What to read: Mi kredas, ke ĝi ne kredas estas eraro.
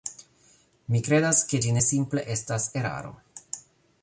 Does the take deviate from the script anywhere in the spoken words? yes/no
yes